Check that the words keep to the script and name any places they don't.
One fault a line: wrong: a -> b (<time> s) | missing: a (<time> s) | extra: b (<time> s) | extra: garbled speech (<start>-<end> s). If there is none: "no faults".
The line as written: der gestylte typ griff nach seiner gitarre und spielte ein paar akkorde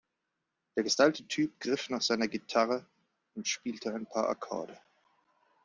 no faults